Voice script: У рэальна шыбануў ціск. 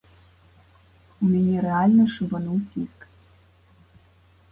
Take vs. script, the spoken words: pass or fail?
fail